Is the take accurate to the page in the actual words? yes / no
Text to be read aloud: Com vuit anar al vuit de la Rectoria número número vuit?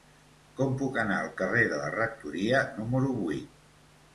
no